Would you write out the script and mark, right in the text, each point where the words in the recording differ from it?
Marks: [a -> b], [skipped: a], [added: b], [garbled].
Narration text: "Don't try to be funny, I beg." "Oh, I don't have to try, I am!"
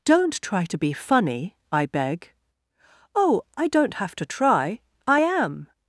"Don't try to be funny, I beg." "Oh, I don't have to try, I am!"